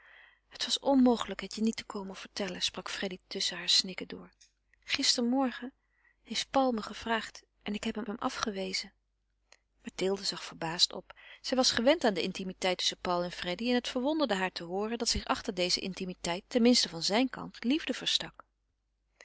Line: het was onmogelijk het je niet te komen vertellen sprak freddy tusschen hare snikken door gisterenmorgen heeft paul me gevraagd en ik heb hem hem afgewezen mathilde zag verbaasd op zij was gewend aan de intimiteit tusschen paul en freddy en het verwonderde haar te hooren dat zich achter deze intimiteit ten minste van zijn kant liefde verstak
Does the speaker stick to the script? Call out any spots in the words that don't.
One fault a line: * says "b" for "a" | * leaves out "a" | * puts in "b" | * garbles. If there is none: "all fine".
all fine